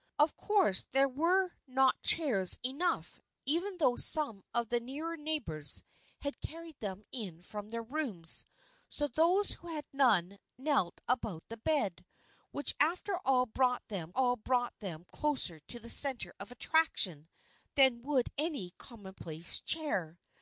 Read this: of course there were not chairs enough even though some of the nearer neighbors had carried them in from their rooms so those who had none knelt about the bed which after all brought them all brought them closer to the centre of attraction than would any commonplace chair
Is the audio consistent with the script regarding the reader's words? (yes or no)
yes